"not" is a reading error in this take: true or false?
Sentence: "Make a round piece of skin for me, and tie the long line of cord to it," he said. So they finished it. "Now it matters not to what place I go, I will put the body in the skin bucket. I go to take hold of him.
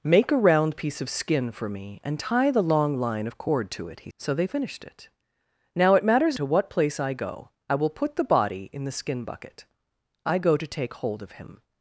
true